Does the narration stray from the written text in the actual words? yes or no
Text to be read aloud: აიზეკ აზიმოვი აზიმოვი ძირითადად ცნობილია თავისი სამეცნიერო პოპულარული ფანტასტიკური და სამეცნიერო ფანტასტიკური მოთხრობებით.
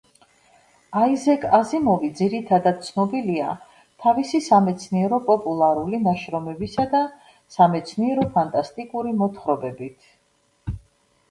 yes